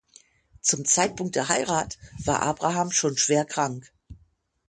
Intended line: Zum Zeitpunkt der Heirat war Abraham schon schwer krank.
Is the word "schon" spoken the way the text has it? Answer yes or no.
yes